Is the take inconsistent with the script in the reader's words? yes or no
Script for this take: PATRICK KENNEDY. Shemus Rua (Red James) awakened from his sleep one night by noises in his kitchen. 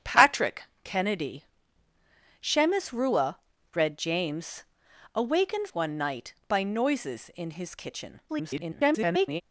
yes